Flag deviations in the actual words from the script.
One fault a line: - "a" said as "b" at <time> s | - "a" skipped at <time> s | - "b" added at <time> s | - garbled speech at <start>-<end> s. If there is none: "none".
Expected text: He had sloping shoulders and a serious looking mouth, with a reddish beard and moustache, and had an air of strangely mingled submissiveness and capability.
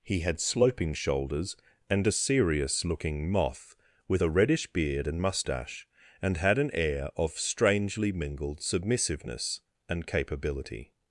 - "mouth" said as "moth" at 3.3 s